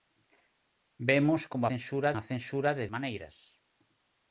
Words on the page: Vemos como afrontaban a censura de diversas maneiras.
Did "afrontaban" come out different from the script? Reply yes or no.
yes